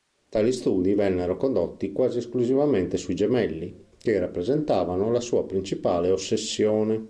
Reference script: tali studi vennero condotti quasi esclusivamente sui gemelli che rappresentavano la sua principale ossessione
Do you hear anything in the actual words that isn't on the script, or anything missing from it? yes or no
no